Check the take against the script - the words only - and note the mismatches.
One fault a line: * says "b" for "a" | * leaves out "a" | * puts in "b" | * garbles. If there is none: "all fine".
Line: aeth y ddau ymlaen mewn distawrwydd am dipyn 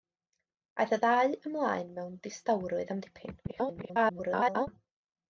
* garbles